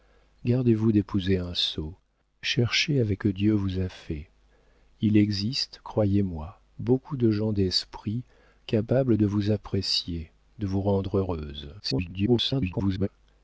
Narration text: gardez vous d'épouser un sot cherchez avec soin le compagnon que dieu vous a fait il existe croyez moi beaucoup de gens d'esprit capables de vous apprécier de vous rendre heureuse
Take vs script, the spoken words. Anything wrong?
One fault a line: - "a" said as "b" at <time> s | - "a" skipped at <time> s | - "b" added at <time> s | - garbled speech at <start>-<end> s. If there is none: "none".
- "soin le compagnon" skipped at 3.2 s
- garbled speech at 11.8-13.1 s